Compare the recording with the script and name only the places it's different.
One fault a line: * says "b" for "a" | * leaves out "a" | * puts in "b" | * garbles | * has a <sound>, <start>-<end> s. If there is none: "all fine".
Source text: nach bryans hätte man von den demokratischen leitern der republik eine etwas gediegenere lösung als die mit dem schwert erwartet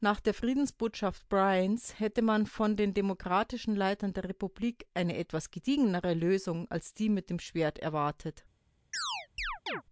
* puts in "der friedensbotschaft"
* has a chirp, 8.9-9.8 s